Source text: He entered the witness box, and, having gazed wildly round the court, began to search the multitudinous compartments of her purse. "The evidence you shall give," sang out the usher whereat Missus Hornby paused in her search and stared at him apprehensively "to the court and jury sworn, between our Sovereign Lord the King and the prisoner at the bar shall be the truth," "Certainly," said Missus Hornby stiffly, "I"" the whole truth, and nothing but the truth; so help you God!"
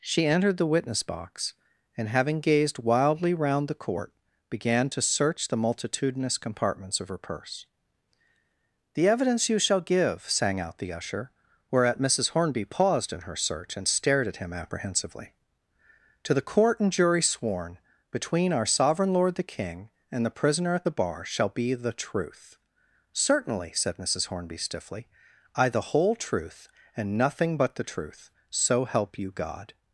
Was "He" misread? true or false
true